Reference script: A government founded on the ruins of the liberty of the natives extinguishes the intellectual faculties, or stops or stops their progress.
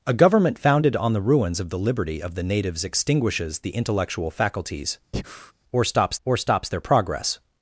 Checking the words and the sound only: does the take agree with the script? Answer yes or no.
no